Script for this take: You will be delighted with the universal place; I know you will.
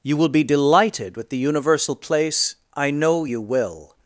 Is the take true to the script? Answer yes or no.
yes